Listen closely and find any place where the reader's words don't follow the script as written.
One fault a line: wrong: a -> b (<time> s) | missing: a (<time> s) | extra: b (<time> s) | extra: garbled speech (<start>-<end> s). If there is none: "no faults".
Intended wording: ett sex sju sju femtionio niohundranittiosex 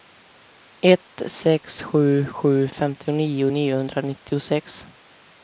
no faults